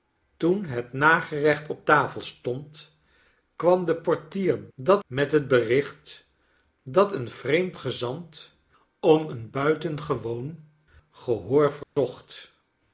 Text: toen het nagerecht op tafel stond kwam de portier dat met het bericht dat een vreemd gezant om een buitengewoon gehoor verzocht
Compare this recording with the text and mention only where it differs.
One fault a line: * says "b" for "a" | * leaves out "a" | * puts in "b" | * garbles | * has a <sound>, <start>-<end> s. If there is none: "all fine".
* has a dropout, 11.8-12.0 s